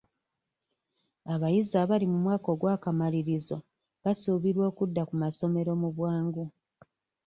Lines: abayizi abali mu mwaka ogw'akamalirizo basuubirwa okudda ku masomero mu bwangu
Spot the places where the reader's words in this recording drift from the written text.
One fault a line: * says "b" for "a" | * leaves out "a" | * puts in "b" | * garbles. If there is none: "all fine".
all fine